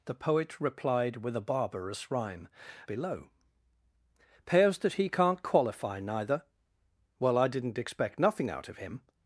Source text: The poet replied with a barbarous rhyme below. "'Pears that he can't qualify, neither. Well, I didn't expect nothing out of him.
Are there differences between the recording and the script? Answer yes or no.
no